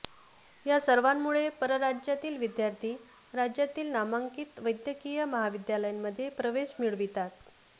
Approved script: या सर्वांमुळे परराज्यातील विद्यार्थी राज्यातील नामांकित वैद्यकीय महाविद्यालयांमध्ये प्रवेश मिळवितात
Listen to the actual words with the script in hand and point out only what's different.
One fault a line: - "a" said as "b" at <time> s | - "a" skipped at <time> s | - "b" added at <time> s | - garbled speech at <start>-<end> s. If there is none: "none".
none